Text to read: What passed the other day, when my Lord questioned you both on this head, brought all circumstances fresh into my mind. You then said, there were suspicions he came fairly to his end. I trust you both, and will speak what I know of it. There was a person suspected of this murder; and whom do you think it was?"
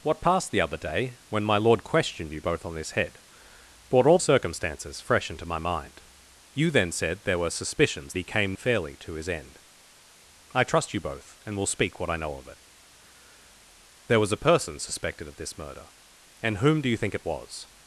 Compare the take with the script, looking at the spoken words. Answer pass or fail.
pass